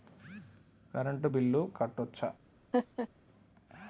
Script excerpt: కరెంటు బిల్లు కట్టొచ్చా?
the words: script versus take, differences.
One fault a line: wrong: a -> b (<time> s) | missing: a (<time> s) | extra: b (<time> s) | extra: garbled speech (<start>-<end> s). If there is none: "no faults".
no faults